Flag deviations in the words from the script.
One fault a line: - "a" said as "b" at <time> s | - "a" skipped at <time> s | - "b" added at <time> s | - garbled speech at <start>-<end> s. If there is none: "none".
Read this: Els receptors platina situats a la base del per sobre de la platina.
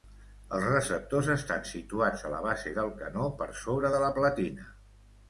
- "platina" said as "estan" at 1.3 s
- "canó" added at 3.0 s